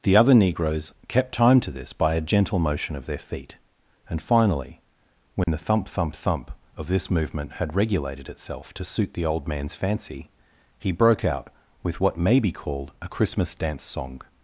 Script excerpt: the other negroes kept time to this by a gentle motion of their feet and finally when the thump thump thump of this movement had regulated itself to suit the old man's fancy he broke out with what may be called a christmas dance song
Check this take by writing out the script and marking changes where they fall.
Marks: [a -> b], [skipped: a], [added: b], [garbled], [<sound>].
the other negroes kept time to this by a gentle motion of their feet and finally when [dropout] the thump thump thump of this movement had regulated itself to suit the old man's fancy he broke out with what may be called a christmas dance song